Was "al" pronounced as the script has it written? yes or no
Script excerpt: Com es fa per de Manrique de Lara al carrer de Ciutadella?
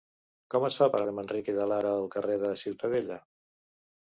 yes